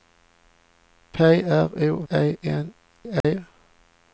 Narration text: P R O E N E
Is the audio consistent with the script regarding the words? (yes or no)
yes